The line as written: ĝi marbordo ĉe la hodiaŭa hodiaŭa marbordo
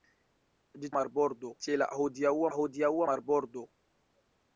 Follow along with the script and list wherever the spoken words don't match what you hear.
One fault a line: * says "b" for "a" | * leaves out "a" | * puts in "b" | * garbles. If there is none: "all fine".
all fine